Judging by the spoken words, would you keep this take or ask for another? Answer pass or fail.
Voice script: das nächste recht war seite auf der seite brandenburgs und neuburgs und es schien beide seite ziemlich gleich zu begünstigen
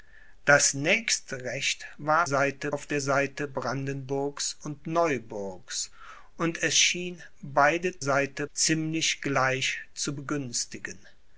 pass